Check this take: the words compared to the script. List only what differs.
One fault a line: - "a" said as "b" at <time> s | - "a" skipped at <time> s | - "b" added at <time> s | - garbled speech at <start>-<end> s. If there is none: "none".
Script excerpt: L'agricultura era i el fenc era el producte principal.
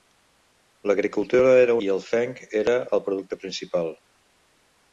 none